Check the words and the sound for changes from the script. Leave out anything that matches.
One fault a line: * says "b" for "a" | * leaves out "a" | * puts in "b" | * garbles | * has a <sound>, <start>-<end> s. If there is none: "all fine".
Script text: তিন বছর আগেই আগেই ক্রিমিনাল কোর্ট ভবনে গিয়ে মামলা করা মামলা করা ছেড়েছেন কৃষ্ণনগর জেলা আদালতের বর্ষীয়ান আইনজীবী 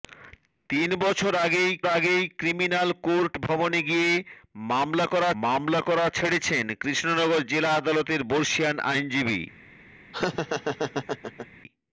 * has a laugh, 10.1-11.5 s